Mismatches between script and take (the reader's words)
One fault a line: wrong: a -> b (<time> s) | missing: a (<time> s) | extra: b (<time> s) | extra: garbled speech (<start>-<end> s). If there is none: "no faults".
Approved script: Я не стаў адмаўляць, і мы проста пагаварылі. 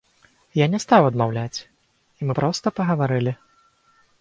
no faults